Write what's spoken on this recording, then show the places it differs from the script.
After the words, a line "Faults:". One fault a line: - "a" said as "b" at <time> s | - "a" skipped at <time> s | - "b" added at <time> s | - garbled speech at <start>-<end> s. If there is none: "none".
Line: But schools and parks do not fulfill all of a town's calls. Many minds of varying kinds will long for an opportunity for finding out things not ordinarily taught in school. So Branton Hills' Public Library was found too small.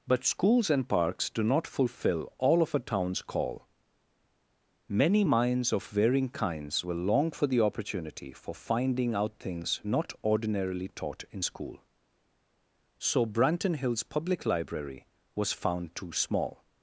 But schools and parks do not fulfill all of a town's call. Many minds of varying kinds will long for the opportunity for finding out things not ordinarily taught in school. So Branton Hills' Public Library was found too small.
Faults:
- "calls" said as "call" at 3.2 s
- "an" said as "the" at 7.4 s